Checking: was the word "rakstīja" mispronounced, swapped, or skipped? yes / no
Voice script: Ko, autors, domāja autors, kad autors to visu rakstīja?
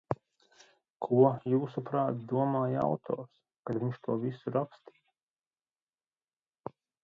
no